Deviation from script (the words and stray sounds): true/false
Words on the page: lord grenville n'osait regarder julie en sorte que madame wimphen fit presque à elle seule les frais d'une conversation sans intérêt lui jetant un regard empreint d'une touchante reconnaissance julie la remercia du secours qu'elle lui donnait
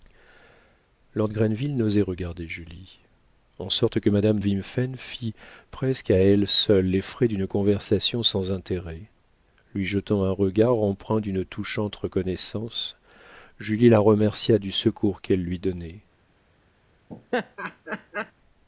true